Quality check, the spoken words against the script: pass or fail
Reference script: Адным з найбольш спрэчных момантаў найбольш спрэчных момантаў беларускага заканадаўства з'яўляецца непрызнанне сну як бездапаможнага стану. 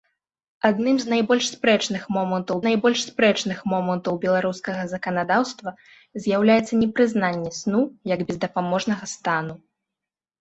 pass